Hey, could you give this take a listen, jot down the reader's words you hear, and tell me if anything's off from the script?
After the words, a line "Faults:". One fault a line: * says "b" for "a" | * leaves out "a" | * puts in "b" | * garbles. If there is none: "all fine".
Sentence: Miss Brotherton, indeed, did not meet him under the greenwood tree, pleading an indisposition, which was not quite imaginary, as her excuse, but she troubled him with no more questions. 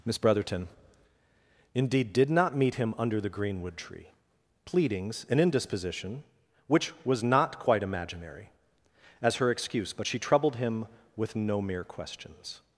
Miss Brotherton, indeed, did not meet him under the greenwood tree, pleadings an indisposition, which was not quite imaginary, as her excuse, but she troubled him with no mere questions.
Faults:
* says "pleadings" for "pleading"
* says "mere" for "more"